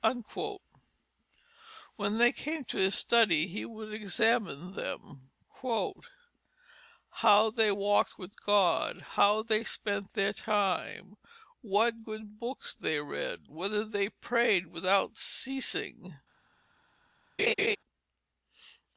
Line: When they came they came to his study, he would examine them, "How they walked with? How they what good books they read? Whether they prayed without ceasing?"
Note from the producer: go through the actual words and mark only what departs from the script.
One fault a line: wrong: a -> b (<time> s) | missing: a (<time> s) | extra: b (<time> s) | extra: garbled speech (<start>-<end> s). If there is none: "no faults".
missing: they came (2.6 s)
extra: God (8.4 s)
extra: spent their time (9.6 s)